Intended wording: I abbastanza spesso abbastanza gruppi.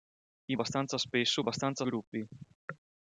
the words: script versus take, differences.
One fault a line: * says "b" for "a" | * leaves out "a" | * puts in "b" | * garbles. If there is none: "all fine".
all fine